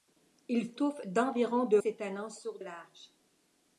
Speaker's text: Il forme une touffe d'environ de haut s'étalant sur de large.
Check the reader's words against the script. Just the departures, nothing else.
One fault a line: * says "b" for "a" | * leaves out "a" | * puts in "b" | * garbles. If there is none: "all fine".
* leaves out "forme une"
* leaves out "haut"
* leaves out "de"